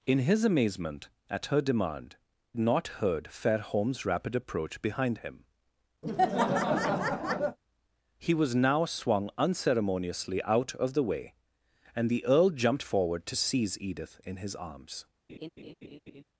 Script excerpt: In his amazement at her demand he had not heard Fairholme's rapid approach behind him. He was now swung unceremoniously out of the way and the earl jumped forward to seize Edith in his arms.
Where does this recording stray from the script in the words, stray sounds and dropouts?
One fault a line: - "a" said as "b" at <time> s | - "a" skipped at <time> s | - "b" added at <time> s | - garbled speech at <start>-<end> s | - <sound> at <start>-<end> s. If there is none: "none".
- "he had" skipped at 2.1 s
- laugh at 6.0-7.6 s
- laugh at 15.3-16.2 s